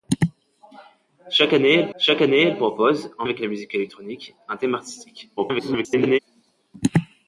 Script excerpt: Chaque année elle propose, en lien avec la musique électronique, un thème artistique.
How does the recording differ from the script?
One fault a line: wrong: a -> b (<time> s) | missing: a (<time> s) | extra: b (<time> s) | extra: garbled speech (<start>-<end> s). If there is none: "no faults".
extra: chaque année elle (2.0 s)
missing: lien (3.2 s)
extra: garbled speech (5.4-6.2 s)